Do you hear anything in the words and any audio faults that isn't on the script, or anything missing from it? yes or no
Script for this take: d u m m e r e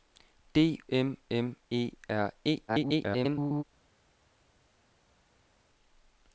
yes